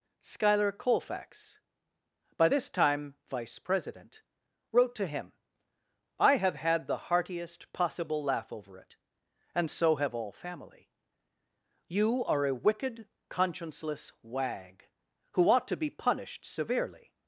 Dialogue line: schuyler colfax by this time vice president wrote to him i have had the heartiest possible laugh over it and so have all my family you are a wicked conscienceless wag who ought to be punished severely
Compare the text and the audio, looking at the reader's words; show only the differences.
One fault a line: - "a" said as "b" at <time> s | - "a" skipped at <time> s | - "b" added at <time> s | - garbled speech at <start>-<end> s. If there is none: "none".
- "my" skipped at 10.3 s